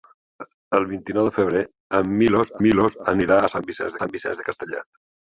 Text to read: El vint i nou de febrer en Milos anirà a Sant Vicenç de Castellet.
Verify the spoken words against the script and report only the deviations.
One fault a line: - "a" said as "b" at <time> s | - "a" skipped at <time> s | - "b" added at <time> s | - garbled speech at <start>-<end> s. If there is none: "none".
- "Milos" added at 2.6 s
- "Sant Vicenç" added at 4.0 s